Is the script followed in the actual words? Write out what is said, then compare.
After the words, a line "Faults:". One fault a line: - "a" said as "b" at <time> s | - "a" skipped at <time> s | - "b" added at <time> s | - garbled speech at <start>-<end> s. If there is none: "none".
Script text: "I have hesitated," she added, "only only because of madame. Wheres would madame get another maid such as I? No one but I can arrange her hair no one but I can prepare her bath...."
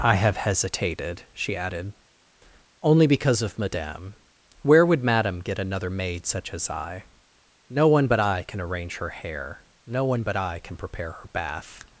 "I have hesitated," she added, "only because of madame. Where would madame get another maid such as I? No one but I can arrange her hair no one but I can prepare her bath...."
Faults:
- "only" skipped at 3.1 s
- "Wheres" said as "Where" at 4.6 s